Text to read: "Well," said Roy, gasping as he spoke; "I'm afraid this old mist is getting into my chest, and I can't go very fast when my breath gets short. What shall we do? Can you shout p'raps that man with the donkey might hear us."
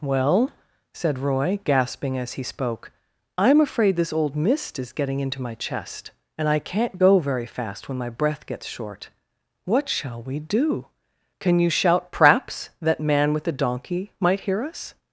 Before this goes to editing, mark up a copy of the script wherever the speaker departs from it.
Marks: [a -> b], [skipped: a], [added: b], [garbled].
"Well," said Roy, gasping as he spoke; "I'm afraid this old mist is getting into my chest, and I can't go very fast when my breath gets short. What shall we do? Can you shout p'raps that man with the donkey might hear us."